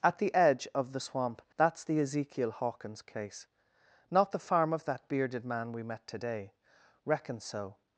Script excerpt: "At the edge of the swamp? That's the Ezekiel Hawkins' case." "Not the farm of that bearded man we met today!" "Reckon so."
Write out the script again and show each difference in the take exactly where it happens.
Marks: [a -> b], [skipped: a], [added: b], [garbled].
"At the edge of the swamp? That's the Ezekiel Hawkins' case." "Not the farm of that bearded man we met today!" "Reckon so."